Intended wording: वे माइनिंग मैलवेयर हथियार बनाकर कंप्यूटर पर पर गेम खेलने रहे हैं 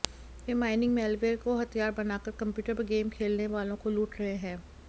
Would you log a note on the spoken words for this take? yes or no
yes